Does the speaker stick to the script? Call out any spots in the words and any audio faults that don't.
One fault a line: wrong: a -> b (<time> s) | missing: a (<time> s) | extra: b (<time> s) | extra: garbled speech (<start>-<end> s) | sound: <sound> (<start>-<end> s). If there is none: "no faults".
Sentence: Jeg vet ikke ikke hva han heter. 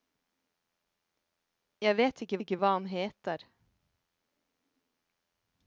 no faults